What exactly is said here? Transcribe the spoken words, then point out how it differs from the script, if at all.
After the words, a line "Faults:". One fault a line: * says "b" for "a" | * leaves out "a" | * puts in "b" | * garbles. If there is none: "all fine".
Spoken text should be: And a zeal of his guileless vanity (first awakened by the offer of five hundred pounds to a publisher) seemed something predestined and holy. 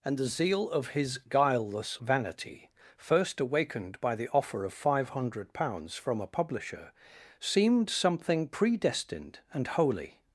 And the zeal of his guileless vanity (first awakened by the offer of five hundred pounds from a publisher) seemed something predestined and holy.
Faults:
* says "the" for "a"
* says "from" for "to"